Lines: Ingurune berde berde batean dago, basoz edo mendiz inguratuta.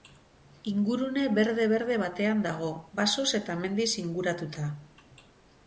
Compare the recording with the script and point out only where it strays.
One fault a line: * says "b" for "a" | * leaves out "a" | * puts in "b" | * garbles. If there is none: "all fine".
* says "eta" for "edo"